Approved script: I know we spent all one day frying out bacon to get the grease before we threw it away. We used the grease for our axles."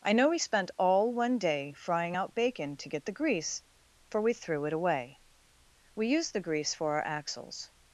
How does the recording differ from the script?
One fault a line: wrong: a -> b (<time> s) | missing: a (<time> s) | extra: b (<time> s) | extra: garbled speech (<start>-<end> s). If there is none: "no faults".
wrong: before -> for (4.1 s)